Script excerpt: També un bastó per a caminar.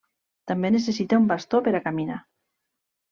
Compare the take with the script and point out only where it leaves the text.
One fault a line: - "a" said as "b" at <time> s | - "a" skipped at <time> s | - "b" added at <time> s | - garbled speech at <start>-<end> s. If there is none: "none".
- "necessita" added at 0.7 s